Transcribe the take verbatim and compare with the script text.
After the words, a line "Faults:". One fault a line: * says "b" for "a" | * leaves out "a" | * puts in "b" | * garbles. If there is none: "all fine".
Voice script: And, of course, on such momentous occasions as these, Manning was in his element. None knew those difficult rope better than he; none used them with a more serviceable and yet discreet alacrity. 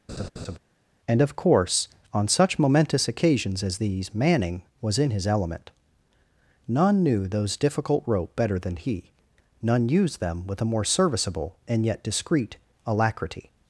And, of course, on such momentous occasions as these, Manning was in his element. None knew those difficult rope better than he; none used them with a more serviceable and yet discreet alacrity.
Faults:
all fine